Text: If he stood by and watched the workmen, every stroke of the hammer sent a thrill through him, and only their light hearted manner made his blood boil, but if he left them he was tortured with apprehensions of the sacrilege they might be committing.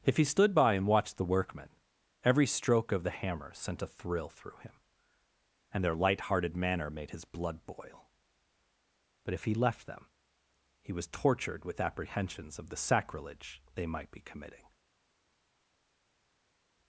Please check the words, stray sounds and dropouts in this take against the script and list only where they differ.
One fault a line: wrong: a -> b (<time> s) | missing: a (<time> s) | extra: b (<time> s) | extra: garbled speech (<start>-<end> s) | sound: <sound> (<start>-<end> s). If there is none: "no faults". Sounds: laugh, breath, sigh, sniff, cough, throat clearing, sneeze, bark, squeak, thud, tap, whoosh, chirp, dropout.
missing: only (5.8 s)